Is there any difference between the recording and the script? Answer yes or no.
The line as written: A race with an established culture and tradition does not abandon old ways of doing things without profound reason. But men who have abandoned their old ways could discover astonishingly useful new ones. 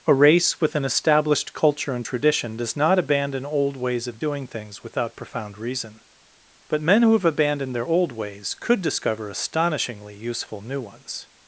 no